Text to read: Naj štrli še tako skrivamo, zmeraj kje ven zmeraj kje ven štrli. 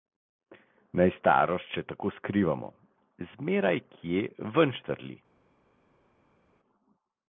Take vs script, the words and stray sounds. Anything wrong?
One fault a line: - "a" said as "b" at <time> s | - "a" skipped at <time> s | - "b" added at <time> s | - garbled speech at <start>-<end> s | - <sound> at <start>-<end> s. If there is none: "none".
- "štrli" said as "starost" at 1.2 s
- "zmeraj kje ven" skipped at 4.7 s